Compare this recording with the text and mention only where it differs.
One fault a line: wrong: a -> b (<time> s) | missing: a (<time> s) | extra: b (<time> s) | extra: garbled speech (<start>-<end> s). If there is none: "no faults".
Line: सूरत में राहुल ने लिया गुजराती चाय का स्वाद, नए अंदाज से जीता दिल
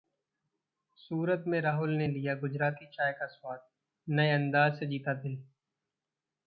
no faults